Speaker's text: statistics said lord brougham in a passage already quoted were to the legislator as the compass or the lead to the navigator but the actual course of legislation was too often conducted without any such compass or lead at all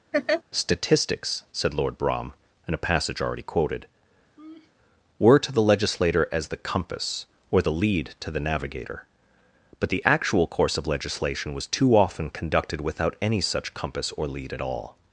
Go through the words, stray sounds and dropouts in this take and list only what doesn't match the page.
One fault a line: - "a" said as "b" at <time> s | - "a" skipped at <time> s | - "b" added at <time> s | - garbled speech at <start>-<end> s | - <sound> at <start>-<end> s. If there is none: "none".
- laugh at 0.1-0.4 s
- laugh at 4.4-4.7 s